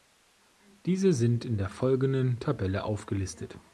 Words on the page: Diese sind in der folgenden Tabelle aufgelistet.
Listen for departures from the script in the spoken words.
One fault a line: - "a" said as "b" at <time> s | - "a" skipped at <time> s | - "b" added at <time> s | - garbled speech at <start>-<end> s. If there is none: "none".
none